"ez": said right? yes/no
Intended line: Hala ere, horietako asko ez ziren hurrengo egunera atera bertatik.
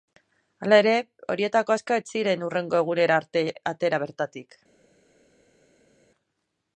yes